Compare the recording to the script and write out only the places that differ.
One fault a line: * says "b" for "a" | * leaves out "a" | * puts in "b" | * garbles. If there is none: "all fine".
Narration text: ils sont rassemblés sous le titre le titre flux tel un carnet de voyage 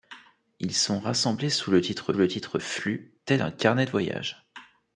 all fine